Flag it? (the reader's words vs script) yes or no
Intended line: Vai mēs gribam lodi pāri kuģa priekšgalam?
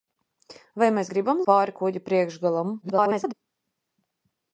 yes